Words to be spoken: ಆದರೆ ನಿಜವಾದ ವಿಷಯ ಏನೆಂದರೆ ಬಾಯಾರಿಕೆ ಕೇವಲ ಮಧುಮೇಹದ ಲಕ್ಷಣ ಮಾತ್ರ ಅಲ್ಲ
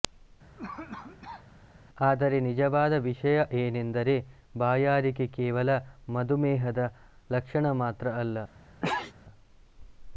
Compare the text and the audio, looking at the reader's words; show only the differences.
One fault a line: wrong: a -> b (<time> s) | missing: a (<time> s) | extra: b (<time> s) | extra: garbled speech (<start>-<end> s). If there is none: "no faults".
no faults